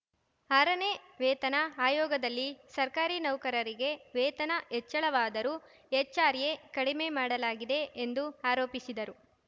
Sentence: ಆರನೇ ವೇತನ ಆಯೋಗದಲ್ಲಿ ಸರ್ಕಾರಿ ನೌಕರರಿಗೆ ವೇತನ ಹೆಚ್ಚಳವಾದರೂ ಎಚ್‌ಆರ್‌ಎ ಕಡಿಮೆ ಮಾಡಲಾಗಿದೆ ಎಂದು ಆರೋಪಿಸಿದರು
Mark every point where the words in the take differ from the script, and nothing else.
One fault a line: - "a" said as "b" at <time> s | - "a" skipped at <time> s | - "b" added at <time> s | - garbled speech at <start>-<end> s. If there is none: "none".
none